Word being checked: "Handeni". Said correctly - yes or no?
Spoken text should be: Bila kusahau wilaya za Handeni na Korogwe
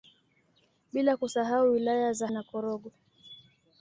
no